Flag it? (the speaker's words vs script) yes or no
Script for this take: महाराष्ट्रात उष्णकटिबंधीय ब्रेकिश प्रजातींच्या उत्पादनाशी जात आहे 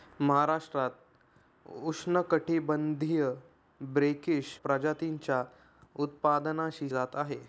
no